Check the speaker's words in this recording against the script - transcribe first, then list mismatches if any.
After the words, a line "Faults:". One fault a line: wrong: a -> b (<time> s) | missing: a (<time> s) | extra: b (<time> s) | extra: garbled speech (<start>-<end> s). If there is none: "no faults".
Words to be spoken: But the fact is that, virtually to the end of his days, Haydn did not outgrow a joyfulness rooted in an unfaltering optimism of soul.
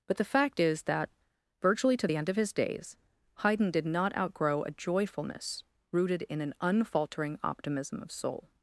But the fact is that, virtually to the end of his days, Haydn did not outgrow a joyfulness rooted in an unfaltering optimism of soul.
Faults:
no faults